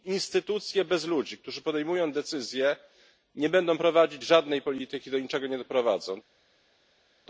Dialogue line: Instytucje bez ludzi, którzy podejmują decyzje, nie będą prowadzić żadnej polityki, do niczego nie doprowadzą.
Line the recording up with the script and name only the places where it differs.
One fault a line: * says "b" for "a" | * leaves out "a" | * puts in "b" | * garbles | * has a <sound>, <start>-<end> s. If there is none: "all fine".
all fine